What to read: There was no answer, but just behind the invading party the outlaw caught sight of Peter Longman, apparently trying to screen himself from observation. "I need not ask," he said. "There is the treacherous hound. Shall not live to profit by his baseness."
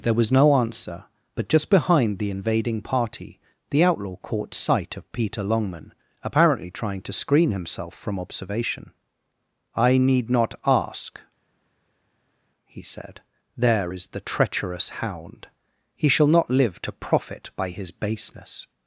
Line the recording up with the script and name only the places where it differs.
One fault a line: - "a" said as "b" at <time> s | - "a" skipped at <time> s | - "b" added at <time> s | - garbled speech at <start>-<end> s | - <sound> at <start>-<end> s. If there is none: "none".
- "He" added at 16.0 s